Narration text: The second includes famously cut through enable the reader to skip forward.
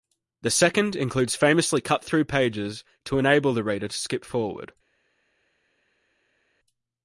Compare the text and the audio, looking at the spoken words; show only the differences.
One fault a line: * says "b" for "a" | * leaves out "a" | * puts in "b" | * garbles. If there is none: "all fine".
* puts in "pages to"